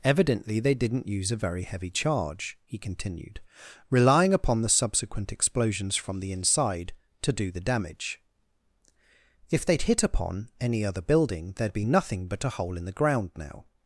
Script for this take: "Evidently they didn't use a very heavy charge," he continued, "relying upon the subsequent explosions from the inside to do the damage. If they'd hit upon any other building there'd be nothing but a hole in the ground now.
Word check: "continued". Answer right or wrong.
right